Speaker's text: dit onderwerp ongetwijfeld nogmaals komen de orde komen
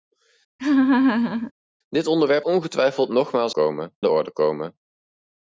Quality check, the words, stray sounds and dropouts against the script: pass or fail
fail